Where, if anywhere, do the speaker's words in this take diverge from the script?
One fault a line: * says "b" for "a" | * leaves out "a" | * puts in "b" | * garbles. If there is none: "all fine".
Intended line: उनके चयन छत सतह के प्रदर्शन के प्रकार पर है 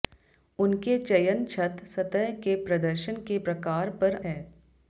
all fine